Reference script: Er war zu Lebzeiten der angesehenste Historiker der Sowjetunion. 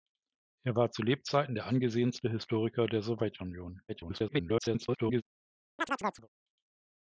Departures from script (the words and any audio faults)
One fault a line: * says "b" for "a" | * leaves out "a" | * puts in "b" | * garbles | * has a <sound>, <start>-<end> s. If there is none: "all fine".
* garbles
* has a chirp, 5.8-6.3 s